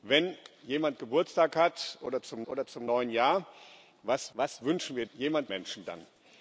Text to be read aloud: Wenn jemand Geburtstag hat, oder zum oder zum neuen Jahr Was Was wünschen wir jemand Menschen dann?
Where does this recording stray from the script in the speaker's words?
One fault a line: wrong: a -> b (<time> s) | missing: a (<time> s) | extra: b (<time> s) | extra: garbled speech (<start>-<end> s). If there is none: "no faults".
no faults